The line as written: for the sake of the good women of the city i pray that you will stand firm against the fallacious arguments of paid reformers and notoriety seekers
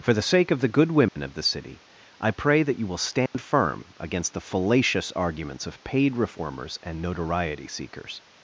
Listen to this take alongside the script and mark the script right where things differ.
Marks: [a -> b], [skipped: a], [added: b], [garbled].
for the sake of the good women of the city i pray that you will stand firm against the fallacious arguments of paid reformers and notoriety seekers